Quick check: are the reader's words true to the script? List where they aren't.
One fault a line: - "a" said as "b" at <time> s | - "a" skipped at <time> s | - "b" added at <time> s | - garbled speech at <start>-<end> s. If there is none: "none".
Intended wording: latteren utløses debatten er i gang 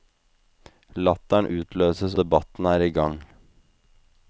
none